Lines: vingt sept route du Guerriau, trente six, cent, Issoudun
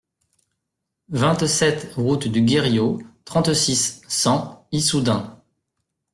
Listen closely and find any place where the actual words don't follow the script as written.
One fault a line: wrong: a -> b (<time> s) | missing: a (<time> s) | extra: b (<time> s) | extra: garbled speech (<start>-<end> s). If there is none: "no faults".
no faults